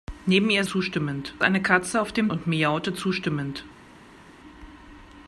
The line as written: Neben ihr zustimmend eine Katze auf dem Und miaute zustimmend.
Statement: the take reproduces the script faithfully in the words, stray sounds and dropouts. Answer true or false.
true